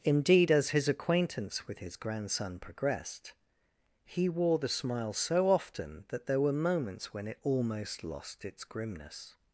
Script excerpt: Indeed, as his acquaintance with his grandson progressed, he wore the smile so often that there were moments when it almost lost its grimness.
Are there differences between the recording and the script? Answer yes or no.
no